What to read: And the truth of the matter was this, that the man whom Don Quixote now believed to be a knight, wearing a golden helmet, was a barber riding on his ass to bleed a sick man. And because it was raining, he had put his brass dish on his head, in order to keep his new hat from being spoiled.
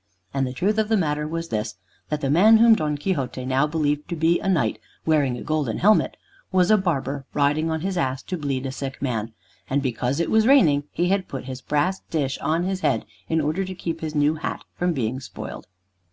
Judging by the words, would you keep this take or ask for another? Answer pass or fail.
pass